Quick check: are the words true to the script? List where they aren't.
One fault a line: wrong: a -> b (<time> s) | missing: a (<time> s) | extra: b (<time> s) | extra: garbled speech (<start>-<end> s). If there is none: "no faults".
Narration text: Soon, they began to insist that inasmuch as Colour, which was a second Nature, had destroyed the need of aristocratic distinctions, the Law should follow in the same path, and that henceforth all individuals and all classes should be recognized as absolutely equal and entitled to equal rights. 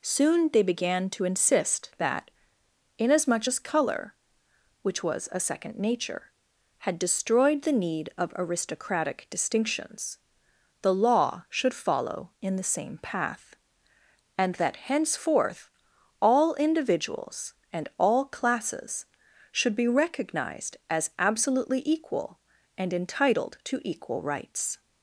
no faults